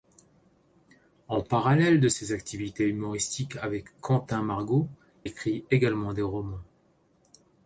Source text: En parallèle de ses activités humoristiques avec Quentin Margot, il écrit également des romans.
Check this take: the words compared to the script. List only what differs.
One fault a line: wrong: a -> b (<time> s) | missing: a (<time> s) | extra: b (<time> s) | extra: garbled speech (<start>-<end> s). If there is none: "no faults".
missing: il (4.9 s)